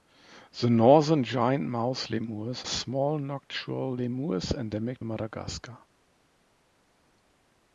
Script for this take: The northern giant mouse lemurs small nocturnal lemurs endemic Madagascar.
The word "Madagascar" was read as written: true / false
true